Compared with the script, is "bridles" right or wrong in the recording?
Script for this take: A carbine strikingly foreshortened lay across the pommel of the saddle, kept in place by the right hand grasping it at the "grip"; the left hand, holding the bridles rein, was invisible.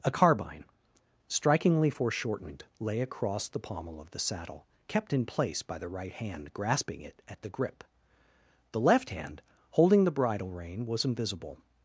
wrong